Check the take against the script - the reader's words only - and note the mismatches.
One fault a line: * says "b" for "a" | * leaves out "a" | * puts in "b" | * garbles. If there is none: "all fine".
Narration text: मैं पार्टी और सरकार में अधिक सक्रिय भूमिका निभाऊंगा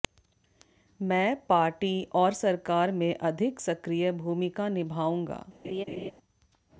all fine